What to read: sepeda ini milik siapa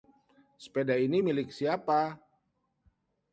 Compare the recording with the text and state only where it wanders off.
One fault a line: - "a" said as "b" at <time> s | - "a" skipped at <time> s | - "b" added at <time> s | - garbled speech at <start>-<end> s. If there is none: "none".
none